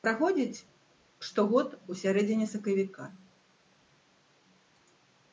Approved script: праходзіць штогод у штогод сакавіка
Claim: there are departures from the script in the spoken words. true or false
true